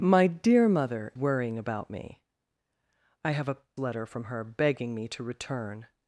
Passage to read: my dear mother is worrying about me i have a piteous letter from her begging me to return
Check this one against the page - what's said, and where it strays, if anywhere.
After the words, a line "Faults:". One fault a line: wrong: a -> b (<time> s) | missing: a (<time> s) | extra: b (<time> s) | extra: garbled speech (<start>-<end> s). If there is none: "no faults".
my dear mother worrying about me i have a letter from her begging me to return
Faults:
missing: is (1.1 s)
missing: piteous (3.6 s)